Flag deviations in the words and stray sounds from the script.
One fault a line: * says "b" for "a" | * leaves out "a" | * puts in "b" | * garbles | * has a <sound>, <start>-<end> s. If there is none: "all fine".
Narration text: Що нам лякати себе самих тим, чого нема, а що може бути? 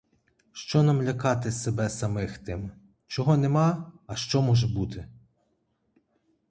all fine